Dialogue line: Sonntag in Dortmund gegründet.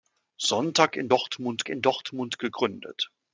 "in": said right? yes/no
yes